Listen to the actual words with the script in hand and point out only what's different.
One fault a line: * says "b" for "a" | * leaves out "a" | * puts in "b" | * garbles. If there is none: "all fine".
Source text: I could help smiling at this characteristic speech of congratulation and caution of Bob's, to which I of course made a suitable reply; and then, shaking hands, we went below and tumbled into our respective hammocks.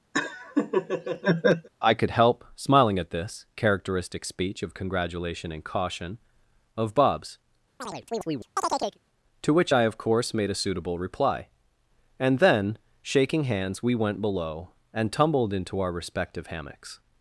all fine